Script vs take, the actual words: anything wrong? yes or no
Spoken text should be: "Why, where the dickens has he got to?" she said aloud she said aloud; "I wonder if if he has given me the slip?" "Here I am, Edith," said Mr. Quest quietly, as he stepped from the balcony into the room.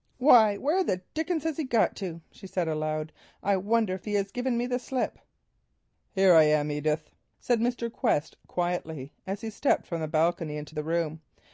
yes